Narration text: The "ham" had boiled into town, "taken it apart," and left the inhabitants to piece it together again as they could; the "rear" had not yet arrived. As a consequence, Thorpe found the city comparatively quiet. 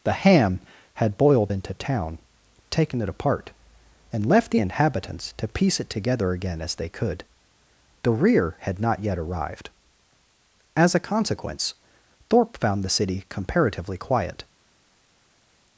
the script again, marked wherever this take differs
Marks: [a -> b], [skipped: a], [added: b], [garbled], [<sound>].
The "ham" had boiled into town, "taken it apart," and left the inhabitants to piece it together again as they could; the "rear" had not yet arrived. As a consequence, Thorpe found the city comparatively quiet.